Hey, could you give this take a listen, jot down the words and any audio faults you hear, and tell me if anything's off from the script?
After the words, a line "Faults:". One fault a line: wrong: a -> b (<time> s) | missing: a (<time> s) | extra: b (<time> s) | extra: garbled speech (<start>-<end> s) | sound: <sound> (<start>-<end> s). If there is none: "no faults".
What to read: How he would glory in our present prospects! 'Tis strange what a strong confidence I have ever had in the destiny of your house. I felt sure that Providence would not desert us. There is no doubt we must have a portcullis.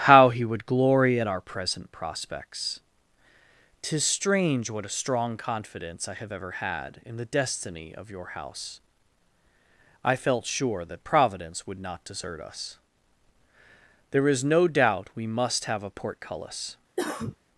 How he would glory at our present prospects! 'Tis strange what a strong confidence I have ever had in the destiny of your house. I felt sure that Providence would not desert us. There is no doubt we must have a portcullis.
Faults:
wrong: in -> at (1.2 s)
sound: cough (17.0-17.4 s)